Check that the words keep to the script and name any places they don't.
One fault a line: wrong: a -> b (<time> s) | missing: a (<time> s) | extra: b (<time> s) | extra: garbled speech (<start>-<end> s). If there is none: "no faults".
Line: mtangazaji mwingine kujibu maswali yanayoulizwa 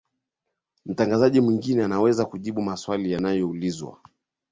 extra: anaweza (1.8 s)